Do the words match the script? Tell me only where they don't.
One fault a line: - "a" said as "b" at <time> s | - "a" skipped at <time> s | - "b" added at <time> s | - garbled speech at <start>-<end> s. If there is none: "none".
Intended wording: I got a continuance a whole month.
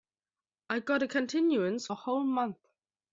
none